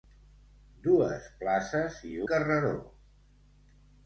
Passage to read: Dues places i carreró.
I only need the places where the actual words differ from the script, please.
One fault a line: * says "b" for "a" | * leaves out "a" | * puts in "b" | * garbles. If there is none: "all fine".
all fine